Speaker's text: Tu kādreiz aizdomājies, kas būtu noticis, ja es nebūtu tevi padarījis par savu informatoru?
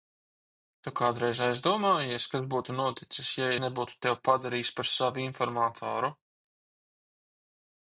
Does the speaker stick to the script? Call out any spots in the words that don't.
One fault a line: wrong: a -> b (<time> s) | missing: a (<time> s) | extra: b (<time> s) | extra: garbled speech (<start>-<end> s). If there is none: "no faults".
missing: es (3.5 s)